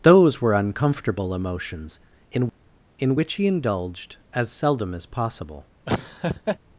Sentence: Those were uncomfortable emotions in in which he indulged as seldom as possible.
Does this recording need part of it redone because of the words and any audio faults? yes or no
yes